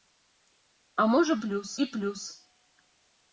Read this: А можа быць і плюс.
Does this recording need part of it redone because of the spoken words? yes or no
yes